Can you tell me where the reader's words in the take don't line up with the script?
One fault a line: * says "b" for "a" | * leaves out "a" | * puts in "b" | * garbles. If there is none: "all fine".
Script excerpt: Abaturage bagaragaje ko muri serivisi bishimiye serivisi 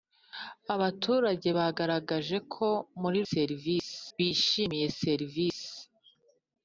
all fine